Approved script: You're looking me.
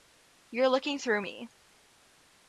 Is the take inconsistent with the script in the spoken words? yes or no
yes